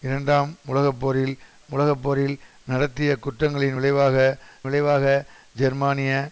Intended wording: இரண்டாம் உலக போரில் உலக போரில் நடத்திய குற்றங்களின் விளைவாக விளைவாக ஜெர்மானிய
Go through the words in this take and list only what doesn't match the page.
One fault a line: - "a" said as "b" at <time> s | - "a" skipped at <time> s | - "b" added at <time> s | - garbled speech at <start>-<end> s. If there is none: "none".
none